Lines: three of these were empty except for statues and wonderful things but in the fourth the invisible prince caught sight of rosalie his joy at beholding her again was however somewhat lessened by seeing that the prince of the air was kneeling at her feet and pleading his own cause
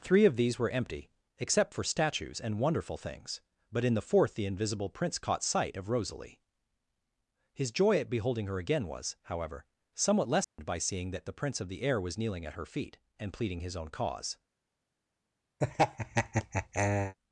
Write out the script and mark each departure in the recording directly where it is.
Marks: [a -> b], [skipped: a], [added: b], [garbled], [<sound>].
three of these were empty except for statues and wonderful things but in the fourth the invisible prince caught sight of rosalie his joy at beholding her again was however somewhat lessened [dropout] by seeing that the prince of the air was kneeling at her feet and pleading his own cause [laugh]